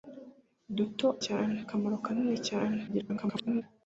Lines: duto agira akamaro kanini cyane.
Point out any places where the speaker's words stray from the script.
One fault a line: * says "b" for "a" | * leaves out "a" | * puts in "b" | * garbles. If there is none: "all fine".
* says "cyane" for "agira"
* garbles